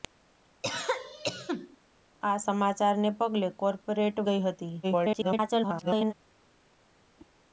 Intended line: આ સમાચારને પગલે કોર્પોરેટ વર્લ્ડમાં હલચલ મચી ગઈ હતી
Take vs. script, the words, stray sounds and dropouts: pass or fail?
fail